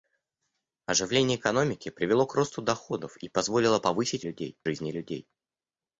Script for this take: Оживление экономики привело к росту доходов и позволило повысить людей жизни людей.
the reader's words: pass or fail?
pass